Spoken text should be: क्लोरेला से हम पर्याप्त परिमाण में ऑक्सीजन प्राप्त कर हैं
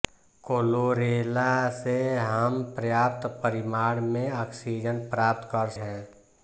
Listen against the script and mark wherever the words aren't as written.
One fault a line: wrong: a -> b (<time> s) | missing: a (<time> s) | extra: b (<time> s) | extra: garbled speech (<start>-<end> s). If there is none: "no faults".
no faults